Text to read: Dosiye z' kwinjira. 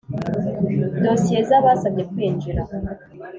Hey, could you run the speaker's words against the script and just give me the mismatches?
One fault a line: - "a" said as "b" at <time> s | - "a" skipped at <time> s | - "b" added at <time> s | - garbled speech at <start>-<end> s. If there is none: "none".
- "abasabye" added at 1.6 s